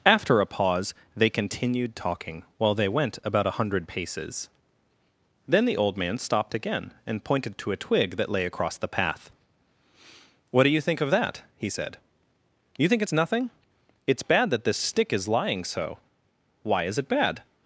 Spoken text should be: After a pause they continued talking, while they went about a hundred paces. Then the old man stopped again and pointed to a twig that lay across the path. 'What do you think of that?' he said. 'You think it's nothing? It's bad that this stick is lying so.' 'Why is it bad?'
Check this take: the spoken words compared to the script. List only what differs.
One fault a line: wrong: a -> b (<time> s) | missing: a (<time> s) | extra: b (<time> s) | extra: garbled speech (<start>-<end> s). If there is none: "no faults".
no faults